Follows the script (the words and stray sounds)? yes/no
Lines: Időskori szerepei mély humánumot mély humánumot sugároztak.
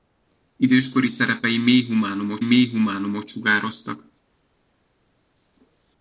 yes